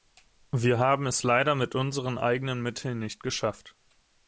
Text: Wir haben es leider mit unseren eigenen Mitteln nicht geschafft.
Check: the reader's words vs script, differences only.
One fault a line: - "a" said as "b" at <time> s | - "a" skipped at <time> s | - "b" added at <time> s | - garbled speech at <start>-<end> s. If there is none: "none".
none